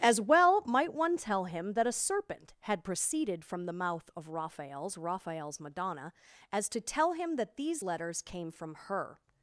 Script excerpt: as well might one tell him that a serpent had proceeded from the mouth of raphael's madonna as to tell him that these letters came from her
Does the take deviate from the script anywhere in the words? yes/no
yes